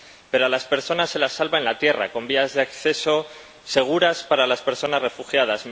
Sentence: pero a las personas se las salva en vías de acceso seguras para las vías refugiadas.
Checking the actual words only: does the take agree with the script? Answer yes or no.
no